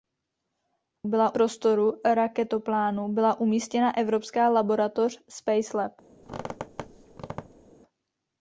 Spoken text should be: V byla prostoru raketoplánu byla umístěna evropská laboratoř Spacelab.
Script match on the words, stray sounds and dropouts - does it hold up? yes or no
no